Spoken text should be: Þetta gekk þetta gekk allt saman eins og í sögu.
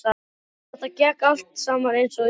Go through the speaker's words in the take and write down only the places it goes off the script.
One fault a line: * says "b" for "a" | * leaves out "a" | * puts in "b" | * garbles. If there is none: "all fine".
* leaves out "þetta gekk"